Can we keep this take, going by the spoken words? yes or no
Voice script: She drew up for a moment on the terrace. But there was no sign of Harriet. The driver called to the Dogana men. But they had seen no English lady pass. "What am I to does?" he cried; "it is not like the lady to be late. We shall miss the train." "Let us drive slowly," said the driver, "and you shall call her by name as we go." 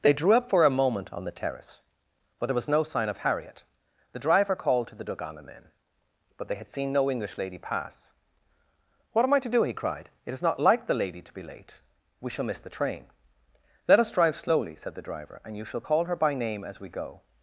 no